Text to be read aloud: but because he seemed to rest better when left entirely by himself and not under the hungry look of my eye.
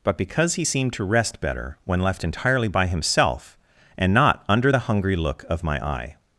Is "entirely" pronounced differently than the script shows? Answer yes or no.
no